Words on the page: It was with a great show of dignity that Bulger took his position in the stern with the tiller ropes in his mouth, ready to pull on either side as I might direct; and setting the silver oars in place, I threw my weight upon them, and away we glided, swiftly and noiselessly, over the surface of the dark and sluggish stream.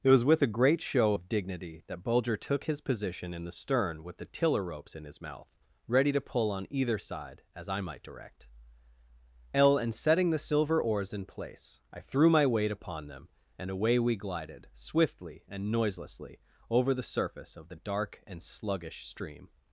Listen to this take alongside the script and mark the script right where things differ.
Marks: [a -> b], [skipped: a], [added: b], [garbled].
It was with a great show of dignity that Bulger took his position in the stern with the tiller ropes in his mouth, ready to pull on either side as I might direct; [added: l] and setting the silver oars in place, I threw my weight upon them, and away we glided, swiftly and noiselessly, over the surface of the dark and sluggish stream.